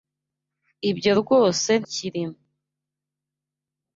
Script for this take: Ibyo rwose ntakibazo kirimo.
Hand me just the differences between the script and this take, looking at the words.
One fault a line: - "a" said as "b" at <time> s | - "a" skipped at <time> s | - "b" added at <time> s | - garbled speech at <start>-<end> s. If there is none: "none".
- "ntakibazo" skipped at 1.7 s